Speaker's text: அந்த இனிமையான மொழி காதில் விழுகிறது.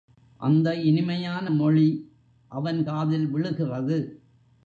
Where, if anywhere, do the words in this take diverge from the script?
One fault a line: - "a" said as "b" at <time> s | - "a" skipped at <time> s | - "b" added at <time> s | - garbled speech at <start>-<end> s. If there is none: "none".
- "அவன்" added at 2.5 s